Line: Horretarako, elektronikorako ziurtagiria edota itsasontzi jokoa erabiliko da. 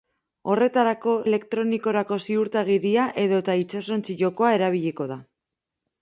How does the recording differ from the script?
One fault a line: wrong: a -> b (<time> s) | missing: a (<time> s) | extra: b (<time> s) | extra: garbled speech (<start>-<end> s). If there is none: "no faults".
no faults